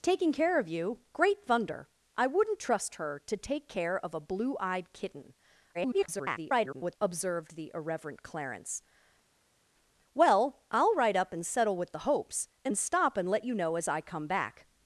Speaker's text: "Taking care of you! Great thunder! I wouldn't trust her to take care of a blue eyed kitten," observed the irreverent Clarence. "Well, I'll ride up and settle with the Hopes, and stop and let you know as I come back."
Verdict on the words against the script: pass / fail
fail